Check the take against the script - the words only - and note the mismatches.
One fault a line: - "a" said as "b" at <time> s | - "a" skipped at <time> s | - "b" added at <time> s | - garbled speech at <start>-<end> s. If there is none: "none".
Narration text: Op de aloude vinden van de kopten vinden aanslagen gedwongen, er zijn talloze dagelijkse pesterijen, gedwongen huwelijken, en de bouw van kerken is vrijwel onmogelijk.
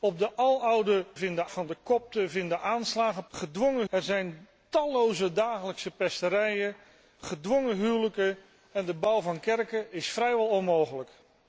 none